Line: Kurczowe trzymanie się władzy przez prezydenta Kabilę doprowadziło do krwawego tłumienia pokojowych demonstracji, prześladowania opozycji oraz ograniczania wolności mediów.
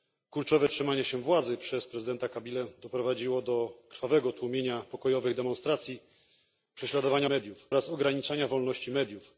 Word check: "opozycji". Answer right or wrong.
wrong